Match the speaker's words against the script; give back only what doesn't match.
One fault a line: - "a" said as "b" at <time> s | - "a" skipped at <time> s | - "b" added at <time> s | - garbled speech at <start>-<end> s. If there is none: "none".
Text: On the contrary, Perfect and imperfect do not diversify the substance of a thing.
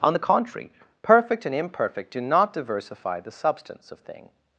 - "a" skipped at 4.0 s